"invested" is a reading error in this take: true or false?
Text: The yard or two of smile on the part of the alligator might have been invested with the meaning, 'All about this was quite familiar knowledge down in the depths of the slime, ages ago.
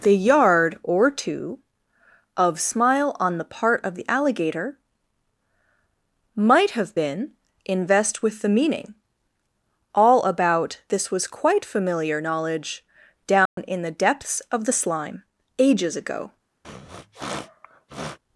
true